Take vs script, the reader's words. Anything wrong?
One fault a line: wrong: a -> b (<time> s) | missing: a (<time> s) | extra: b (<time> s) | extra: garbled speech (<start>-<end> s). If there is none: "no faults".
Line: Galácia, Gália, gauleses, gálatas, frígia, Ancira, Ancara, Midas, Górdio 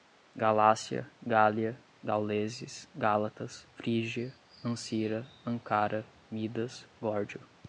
no faults